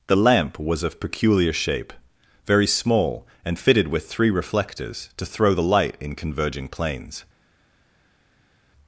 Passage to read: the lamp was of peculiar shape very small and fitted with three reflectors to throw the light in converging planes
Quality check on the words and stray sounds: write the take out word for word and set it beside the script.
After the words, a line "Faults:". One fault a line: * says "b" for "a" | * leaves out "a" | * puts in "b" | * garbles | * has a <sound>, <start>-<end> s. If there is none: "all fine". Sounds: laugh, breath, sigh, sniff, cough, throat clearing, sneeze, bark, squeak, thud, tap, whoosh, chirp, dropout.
the lamp was of peculiar shape very small and fitted with three reflectors to throw the light in converging planes
Faults:
all fine